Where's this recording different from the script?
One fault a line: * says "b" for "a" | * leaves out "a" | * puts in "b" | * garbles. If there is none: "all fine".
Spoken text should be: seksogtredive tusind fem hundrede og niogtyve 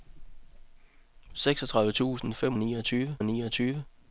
* says "niogtyve" for "hundrede"